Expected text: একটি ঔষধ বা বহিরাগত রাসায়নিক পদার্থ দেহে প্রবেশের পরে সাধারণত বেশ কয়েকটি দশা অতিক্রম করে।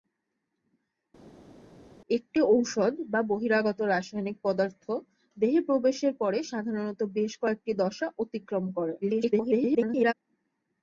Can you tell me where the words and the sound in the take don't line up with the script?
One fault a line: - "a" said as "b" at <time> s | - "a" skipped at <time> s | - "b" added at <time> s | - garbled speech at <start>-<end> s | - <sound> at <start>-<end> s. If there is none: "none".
- garbled speech at 9.0-10.1 s